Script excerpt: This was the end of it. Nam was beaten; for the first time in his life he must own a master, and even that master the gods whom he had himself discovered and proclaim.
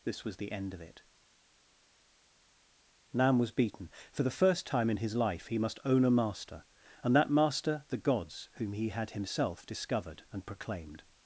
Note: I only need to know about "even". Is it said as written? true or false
false